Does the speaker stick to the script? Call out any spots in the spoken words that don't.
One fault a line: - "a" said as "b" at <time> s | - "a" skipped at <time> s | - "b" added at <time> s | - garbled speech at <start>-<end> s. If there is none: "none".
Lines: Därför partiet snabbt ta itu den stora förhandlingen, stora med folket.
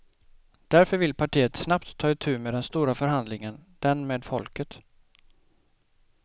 - "vill" added at 1.0 s
- "med" added at 2.4 s
- "stora" said as "den" at 3.8 s